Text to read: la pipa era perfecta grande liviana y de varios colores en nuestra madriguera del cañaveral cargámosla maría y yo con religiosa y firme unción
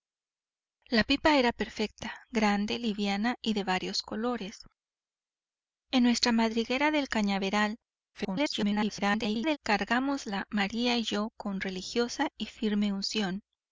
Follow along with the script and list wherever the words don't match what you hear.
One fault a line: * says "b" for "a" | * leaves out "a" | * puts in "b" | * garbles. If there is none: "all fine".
* garbles